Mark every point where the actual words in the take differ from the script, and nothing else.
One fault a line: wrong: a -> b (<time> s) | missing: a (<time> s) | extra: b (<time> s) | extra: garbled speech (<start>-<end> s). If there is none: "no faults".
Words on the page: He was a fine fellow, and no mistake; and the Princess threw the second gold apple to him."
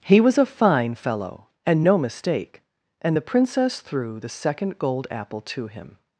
no faults